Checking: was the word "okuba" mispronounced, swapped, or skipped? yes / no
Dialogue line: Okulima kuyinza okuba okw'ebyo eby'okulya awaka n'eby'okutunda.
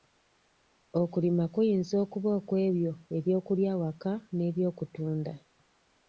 no